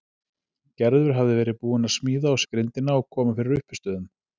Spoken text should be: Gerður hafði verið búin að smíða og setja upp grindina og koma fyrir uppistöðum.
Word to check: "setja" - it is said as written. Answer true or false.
false